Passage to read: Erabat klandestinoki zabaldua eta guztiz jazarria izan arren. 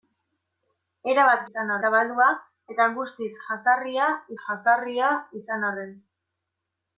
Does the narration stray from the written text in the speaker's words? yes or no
yes